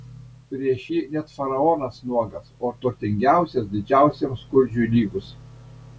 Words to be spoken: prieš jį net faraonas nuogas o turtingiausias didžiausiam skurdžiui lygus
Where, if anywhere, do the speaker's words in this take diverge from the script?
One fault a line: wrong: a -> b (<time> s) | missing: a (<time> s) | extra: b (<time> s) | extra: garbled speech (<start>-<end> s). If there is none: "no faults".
no faults